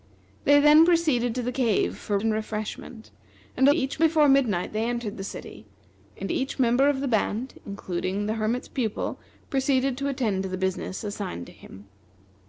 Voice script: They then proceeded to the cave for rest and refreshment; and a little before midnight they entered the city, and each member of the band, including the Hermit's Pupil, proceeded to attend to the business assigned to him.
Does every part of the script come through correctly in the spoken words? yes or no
no